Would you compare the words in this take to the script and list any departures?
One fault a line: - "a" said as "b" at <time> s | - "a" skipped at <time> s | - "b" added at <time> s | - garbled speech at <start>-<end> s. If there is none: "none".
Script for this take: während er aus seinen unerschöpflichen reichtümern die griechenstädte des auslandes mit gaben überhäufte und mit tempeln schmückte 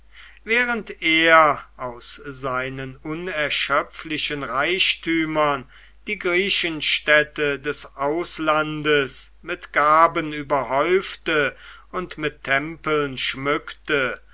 none